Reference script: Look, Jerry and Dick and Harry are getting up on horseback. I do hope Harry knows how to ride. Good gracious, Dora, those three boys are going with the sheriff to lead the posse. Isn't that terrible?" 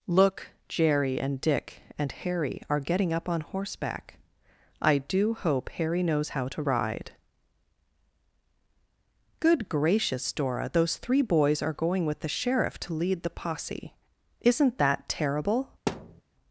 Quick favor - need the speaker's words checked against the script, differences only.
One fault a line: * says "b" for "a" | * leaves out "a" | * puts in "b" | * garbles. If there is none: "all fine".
all fine